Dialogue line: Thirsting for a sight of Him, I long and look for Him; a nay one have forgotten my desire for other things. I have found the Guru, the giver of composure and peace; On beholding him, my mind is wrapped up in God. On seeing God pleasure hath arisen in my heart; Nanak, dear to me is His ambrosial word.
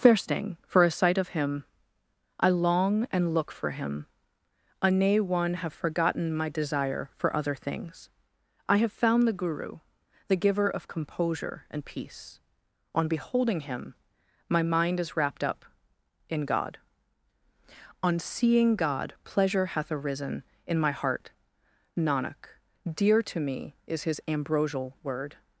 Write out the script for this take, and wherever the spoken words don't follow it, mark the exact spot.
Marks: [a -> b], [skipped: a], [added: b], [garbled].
Thirsting for a sight of Him, I long and look for Him; a nay one have forgotten my desire for other things. I have found the Guru, the giver of composure and peace; On beholding him, my mind is wrapped up in God. On seeing God pleasure hath arisen in my heart; Nanak, dear to me is His ambrosial word.